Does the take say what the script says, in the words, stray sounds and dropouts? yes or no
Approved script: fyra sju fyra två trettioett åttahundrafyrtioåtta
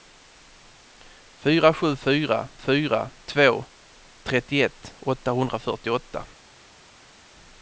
no